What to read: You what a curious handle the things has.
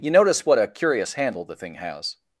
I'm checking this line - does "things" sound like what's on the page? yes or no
no